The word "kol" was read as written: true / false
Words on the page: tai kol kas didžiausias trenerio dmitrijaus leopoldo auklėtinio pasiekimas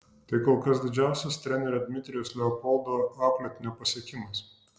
true